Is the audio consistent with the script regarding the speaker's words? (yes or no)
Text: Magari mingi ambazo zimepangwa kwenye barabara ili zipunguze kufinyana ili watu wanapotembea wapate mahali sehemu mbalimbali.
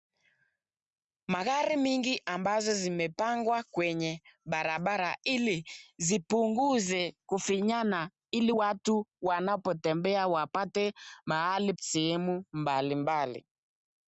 yes